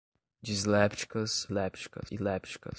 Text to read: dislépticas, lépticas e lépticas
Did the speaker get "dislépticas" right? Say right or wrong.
right